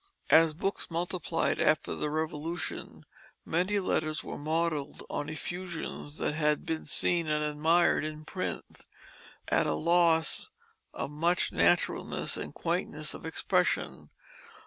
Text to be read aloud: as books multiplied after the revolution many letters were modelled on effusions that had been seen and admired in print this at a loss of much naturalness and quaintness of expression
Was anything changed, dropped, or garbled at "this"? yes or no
yes